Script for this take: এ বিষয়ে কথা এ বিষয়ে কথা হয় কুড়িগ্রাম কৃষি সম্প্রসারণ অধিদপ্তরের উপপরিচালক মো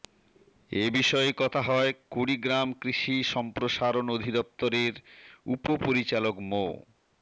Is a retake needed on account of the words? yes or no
yes